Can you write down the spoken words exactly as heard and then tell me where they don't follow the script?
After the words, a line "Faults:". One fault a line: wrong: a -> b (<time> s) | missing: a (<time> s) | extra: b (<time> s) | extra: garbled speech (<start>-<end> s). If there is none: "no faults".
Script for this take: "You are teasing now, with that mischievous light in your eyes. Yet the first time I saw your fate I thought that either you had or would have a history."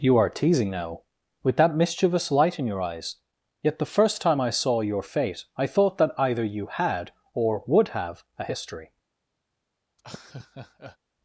"You are teasing now, with that mischievous light in your eyes. Yet the first time I saw your fate I thought that either you had or would have a history."
Faults:
no faults